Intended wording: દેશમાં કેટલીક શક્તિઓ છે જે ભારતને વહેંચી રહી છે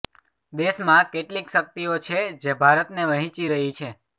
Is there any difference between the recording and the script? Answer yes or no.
no